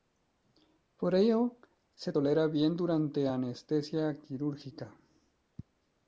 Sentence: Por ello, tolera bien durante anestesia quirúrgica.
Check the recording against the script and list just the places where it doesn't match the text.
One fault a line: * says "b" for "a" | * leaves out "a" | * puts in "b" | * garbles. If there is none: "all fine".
* puts in "se"